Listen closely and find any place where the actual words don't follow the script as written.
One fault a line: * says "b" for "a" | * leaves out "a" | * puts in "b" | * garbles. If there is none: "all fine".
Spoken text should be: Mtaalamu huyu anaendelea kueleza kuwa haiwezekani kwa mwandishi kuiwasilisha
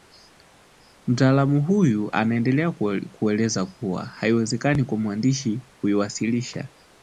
all fine